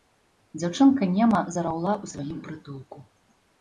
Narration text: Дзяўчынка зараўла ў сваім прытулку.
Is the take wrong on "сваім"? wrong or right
right